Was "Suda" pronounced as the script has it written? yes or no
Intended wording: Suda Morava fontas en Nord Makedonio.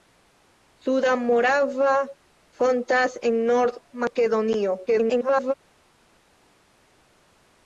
yes